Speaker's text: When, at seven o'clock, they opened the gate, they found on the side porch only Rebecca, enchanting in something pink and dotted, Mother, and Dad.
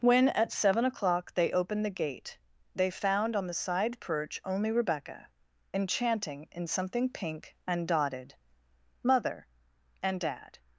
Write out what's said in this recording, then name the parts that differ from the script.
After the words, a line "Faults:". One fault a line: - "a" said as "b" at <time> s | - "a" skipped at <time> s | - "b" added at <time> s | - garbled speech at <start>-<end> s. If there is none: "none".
When, at seven o'clock, they opened the gate, they found on the side perch only Rebecca, enchanting in something pink and dotted, Mother, and Dad.
Faults:
- "porch" said as "perch" at 4.0 s